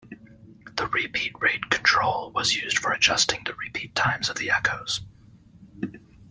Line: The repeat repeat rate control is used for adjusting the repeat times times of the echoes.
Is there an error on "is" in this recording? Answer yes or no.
yes